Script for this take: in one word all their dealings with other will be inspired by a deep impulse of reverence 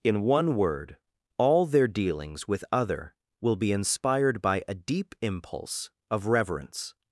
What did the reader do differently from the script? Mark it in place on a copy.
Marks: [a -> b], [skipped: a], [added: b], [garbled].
in one word all their dealings with other will be inspired by a deep impulse of reverence